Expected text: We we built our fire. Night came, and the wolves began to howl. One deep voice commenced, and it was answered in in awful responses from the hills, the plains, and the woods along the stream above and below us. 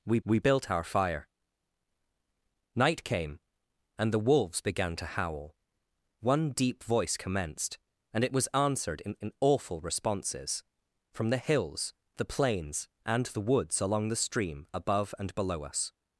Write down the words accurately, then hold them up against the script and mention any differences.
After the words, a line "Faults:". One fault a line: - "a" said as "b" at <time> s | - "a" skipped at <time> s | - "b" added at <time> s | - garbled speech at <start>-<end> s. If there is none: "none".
We we built our fire. Night came, and the wolves began to howl. One deep voice commenced, and it was answered in in awful responses from the hills, the plains, and the woods along the stream above and below us.
Faults:
none